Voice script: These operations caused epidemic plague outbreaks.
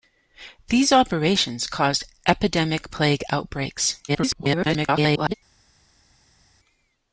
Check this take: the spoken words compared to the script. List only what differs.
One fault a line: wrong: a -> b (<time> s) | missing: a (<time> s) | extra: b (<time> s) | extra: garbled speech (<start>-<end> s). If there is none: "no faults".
extra: garbled speech (4.1-5.3 s)